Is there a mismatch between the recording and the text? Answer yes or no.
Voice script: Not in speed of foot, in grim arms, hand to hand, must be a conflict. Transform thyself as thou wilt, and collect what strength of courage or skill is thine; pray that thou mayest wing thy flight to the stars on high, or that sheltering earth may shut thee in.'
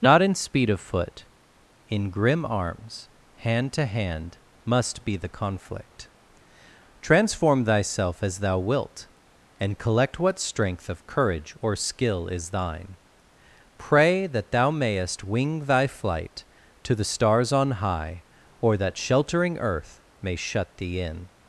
yes